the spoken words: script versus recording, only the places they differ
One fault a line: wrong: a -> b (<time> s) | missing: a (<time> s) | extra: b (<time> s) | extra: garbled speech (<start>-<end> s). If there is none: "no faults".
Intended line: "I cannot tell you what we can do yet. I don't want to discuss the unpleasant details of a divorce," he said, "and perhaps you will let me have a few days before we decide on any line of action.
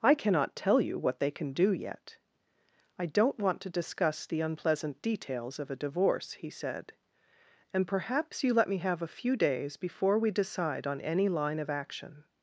wrong: we -> they (1.2 s)
missing: will (8.5 s)